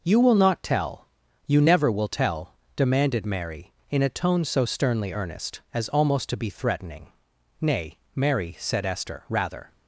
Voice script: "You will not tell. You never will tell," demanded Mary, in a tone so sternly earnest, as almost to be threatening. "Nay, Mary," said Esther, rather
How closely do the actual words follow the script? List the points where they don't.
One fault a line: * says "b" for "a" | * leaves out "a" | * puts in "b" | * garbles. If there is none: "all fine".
all fine